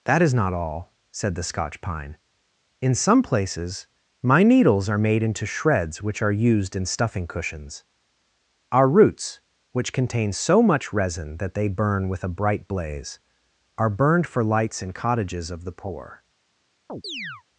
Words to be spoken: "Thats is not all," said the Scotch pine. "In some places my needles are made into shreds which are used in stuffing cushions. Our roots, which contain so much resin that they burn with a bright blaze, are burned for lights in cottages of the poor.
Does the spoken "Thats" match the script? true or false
false